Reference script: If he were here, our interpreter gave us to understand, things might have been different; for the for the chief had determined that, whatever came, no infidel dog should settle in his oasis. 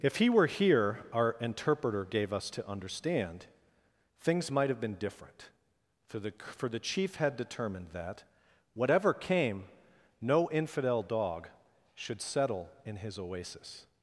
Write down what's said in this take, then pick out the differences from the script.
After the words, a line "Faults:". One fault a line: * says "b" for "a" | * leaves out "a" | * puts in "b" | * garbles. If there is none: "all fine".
If he were here, our interpreter gave us to understand, things might have been different; for the for the chief had determined that, whatever came, no infidel dog should settle in his oasis.
Faults:
all fine